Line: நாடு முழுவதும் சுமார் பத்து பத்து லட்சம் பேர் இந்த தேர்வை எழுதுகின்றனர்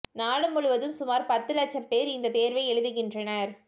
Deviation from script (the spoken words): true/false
true